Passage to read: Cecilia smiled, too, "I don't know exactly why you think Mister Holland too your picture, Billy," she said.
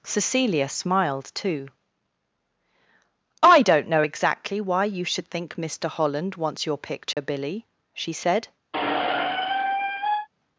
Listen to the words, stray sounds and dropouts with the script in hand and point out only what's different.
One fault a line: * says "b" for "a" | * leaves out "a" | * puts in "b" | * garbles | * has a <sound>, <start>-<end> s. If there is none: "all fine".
* puts in "should"
* says "wants" for "too"
* has a dropout, 7.1-7.2 s
* has a squeak, 8.7-10.3 s